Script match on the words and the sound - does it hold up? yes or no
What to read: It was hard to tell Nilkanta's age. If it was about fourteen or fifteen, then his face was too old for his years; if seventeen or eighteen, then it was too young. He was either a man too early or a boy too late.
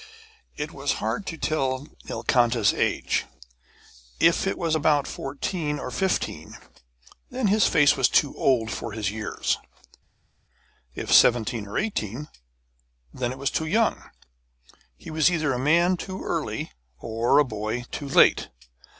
yes